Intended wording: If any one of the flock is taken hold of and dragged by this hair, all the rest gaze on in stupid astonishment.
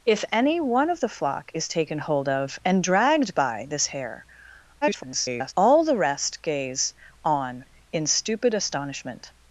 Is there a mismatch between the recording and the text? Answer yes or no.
yes